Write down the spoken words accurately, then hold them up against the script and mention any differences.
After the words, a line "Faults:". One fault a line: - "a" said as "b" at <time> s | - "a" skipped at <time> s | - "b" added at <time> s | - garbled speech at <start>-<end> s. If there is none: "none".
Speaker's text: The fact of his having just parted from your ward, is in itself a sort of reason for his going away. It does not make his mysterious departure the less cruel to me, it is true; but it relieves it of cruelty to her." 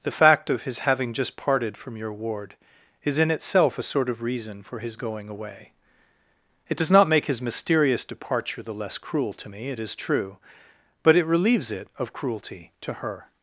The fact of his having just parted from your ward, is in itself a sort of reason for his going away. It does not make his mysterious departure the less cruel to me, it is true; but it relieves it of cruelty to her."
Faults:
none